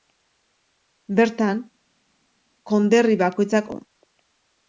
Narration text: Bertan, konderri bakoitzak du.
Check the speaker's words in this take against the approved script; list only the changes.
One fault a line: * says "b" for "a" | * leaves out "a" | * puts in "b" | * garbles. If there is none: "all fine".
all fine